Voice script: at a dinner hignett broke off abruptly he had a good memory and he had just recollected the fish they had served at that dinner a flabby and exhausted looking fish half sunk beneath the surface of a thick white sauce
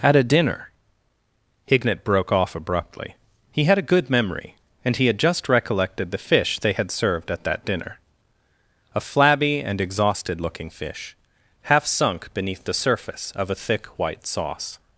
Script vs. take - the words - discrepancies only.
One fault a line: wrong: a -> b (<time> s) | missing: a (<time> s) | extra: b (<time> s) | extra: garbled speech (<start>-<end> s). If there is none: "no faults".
no faults